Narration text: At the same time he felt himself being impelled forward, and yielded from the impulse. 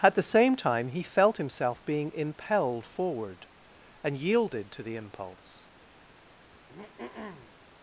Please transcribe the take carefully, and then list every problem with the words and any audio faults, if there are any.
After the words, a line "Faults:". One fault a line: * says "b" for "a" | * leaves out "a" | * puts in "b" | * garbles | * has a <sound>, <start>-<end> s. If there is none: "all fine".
At the same time he felt himself being impelled forward, and yielded to the impulse.
Faults:
* says "to" for "from"
* has a throat clearing, 6.4-7.6 s